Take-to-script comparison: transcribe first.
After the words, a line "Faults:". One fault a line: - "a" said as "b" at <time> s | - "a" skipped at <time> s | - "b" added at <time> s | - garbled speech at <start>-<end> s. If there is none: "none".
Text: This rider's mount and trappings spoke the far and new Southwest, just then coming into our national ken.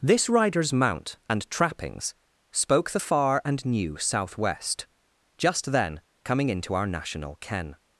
This rider's mount and trappings spoke the far and new Southwest, just then coming into our national ken.
Faults:
none